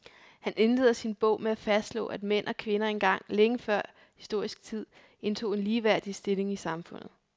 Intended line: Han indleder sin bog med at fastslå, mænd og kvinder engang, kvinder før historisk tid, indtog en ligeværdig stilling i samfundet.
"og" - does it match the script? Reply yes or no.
yes